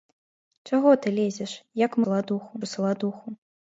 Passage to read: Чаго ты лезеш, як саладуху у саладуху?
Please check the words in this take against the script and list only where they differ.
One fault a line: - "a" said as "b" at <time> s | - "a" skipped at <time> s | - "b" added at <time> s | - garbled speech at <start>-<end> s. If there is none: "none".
none